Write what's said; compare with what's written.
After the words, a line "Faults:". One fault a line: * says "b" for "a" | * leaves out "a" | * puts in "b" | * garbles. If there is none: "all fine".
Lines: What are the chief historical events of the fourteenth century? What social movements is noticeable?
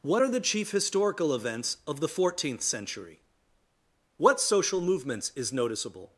What are the chief historical events of the fourteenth century? What social movements is noticeable?
Faults:
all fine